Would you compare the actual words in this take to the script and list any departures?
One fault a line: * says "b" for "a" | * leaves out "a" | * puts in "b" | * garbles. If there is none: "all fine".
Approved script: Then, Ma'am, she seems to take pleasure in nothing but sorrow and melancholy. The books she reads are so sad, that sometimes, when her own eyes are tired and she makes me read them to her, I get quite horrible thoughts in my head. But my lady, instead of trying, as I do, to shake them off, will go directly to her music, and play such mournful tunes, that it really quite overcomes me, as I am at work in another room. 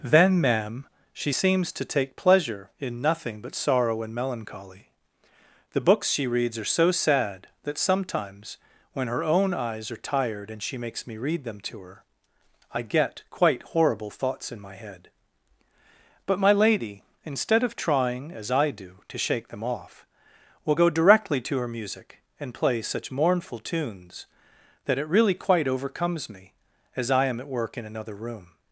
all fine